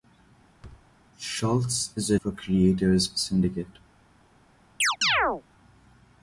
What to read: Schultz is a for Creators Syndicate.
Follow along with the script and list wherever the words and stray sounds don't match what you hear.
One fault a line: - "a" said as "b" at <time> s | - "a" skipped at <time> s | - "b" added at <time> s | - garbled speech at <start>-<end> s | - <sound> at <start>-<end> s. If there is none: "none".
- thud at 0.6-0.9 s
- chirp at 4.8-5.4 s